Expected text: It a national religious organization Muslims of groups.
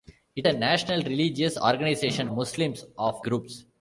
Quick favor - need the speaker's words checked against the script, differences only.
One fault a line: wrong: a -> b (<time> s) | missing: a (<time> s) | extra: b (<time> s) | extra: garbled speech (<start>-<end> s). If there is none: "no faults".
no faults